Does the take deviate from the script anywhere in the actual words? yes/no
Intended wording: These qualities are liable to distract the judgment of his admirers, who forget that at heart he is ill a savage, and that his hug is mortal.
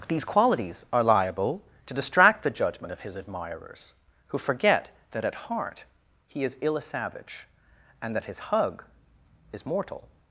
no